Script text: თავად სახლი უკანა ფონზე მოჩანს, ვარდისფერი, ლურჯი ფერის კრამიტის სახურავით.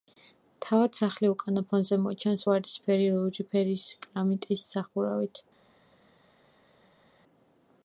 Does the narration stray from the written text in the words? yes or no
no